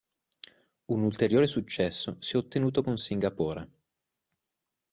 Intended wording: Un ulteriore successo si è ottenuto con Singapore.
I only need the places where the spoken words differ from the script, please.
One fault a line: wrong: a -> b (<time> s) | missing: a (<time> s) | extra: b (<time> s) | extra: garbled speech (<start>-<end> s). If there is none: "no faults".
no faults